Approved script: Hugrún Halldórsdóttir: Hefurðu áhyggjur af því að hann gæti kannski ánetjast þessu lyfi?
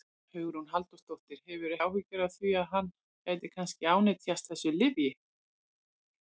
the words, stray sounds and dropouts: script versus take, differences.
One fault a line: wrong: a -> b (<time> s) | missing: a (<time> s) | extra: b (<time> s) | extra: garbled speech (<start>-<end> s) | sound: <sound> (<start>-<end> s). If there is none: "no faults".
no faults